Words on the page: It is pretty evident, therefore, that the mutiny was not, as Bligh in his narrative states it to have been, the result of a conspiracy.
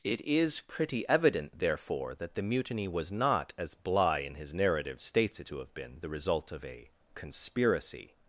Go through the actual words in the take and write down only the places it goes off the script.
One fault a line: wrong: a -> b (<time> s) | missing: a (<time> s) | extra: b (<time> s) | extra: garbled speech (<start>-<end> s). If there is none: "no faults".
no faults